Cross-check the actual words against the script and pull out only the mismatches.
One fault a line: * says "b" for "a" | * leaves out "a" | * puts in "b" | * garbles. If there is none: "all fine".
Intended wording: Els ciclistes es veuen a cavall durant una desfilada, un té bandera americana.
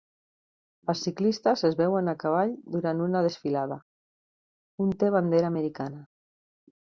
all fine